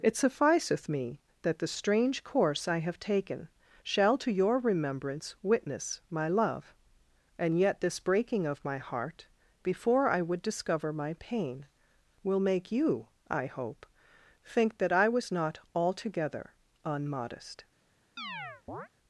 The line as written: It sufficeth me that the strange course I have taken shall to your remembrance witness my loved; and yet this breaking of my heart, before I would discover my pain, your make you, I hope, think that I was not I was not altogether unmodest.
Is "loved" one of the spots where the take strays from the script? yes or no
yes